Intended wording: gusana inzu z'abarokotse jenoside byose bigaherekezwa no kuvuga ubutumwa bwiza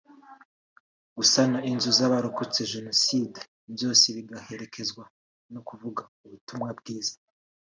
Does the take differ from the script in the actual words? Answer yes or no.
no